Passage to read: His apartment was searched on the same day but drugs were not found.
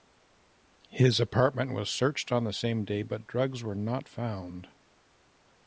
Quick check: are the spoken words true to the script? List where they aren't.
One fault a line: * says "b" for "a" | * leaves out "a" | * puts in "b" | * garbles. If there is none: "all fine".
all fine